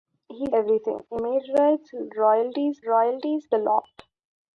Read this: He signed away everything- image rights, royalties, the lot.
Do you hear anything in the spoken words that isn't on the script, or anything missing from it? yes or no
yes